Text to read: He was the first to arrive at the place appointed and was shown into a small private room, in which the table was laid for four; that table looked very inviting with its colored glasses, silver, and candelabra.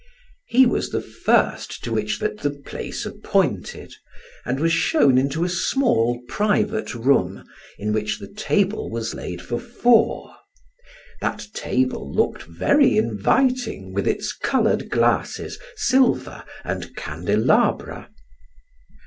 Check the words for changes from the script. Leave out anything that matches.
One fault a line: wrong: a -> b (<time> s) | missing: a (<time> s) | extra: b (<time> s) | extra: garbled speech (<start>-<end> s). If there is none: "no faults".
wrong: arrive -> which (1.9 s)